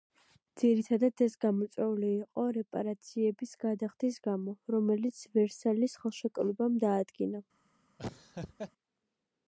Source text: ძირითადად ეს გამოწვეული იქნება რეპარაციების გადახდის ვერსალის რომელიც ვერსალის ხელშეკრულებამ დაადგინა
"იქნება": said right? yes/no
no